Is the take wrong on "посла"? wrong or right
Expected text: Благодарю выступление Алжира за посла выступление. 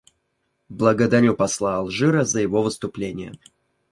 wrong